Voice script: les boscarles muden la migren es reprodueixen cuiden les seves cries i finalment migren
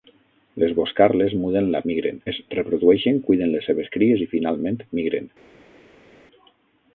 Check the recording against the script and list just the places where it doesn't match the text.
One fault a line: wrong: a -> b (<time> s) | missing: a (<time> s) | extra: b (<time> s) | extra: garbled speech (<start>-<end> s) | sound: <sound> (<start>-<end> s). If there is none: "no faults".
no faults